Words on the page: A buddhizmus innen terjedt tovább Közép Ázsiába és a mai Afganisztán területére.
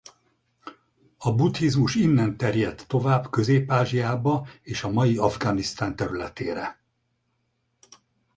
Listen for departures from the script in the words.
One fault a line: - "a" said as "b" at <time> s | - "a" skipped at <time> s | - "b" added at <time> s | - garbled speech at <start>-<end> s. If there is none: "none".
none